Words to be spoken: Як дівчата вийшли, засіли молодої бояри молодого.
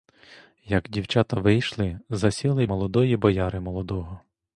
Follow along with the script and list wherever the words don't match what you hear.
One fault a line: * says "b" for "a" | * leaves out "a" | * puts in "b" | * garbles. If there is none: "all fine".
all fine